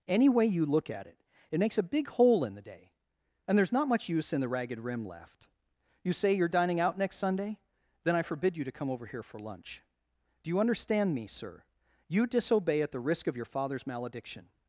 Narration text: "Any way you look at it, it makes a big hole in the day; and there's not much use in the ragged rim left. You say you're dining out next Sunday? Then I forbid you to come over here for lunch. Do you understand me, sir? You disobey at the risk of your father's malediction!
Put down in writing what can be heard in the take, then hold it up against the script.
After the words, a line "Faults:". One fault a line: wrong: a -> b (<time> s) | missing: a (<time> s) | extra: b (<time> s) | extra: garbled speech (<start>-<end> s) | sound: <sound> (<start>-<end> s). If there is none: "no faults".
"Any way you look at it, it makes a big hole in the day; and there's not much use in the ragged rim left. You say you're dining out next Sunday? Then I forbid you to come over here for lunch. Do you understand me, sir? You disobey at the risk of your father's malediction!
Faults:
no faults